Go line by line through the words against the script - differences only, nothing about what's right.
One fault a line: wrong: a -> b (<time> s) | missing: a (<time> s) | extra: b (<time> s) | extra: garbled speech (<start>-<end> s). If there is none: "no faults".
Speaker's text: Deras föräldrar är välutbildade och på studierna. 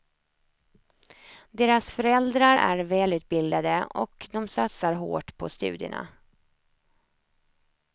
extra: de satsar hårt (4.3 s)